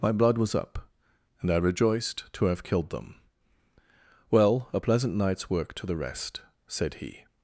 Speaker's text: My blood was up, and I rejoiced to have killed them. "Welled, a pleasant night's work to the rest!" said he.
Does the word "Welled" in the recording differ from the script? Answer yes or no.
yes